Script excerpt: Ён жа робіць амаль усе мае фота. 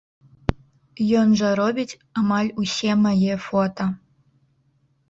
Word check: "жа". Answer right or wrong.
right